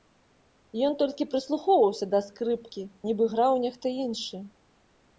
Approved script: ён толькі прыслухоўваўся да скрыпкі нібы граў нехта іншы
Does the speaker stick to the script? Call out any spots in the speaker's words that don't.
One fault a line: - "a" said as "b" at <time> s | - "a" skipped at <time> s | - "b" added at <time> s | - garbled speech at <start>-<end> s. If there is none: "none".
none